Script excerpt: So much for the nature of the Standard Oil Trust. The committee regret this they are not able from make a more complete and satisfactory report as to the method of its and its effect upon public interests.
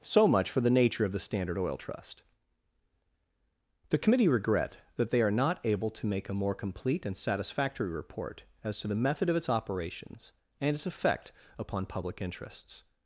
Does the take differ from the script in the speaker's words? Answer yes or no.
yes